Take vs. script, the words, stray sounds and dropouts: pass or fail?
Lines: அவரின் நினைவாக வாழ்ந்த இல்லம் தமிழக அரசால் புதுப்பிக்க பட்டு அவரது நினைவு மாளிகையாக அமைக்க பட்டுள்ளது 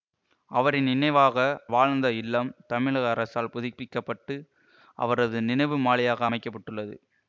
pass